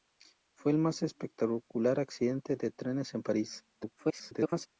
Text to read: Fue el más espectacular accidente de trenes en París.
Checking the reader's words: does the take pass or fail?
fail